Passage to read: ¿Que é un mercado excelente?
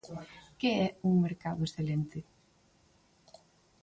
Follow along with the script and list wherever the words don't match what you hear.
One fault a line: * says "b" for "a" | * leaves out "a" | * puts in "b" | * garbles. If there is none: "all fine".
all fine